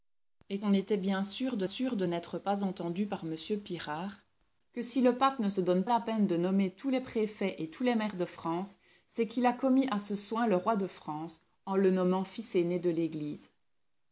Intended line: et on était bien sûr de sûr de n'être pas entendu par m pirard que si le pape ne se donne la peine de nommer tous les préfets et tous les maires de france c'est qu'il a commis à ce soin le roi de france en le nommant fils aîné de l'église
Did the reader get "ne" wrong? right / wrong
right